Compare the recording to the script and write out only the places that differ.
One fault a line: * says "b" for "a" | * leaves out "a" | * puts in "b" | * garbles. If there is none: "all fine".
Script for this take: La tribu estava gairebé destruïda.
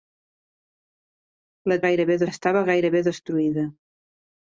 * says "gairebé" for "tribu"